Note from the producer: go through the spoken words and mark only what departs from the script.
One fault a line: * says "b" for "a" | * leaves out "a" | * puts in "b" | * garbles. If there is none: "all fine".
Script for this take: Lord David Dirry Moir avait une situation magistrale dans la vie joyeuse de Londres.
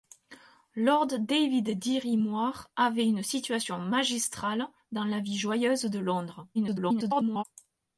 * garbles